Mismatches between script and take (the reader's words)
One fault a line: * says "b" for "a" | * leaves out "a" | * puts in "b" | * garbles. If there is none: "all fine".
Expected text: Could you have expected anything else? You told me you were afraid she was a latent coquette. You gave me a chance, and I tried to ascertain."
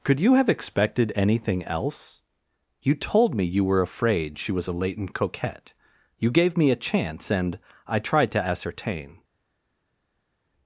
all fine